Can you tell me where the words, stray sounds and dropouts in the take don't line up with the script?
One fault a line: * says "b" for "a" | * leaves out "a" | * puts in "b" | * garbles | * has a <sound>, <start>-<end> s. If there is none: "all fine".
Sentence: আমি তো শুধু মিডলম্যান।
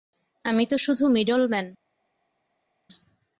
all fine